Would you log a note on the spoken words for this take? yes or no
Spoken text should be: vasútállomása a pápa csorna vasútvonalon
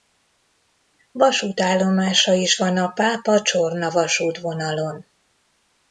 yes